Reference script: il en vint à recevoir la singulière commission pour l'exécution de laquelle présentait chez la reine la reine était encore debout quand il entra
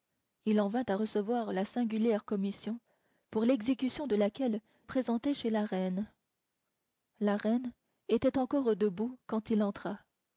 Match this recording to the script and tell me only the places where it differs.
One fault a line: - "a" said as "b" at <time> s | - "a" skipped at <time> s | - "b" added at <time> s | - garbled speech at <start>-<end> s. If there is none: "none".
none